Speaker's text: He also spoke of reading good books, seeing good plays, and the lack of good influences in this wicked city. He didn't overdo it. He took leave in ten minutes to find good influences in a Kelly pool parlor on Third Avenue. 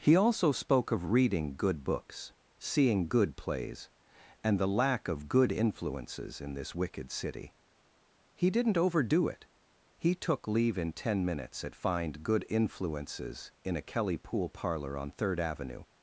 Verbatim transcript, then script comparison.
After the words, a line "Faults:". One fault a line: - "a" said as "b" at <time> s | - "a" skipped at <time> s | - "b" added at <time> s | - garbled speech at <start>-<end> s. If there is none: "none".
He also spoke of reading good books, seeing good plays, and the lack of good influences in this wicked city. He didn't overdo it. He took leave in ten minutes at find good influences in a Kelly pool parlor on Third Avenue.
Faults:
- "to" said as "at" at 11.6 s